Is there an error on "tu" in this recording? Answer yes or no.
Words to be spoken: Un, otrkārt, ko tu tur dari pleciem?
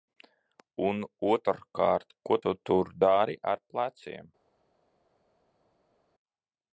no